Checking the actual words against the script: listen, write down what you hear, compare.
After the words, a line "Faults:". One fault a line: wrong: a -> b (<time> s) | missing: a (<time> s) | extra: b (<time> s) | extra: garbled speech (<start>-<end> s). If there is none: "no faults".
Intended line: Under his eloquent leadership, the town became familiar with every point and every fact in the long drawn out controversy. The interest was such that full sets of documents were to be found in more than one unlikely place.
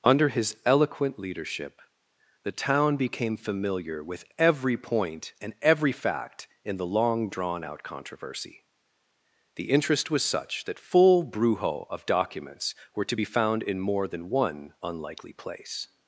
Under his eloquent leadership, the town became familiar with every point and every fact in the long drawn out controversy. The interest was such that full brujo of documents were to be found in more than one unlikely place.
Faults:
wrong: sets -> brujo (11.2 s)